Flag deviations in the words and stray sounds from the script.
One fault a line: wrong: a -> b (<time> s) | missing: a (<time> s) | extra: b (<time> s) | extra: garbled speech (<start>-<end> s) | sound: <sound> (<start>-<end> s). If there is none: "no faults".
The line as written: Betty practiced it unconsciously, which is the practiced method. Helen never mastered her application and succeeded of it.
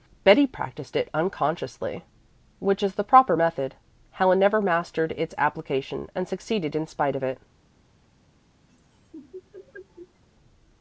wrong: practiced -> proper (3.0 s)
wrong: her -> its (5.2 s)
extra: in spite (6.7 s)
sound: laugh (8.7-10.2 s)